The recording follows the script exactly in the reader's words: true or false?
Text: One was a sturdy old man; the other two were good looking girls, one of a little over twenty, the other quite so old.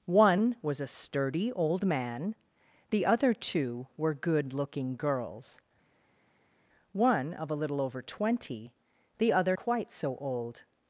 true